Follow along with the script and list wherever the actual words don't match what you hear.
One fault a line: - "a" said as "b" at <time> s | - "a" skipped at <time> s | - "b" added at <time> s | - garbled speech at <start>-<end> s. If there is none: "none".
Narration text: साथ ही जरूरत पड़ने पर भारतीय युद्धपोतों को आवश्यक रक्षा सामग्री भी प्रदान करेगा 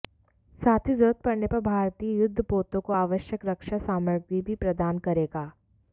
none